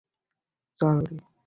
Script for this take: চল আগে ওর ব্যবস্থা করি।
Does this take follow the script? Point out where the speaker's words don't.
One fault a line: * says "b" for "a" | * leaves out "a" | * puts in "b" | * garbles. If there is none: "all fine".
* leaves out "আগে ওর ব্যবস্থা"